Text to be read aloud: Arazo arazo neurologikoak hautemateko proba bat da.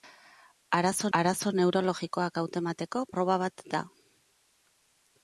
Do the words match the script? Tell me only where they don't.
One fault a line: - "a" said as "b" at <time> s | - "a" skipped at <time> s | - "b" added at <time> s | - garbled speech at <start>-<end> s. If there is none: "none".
none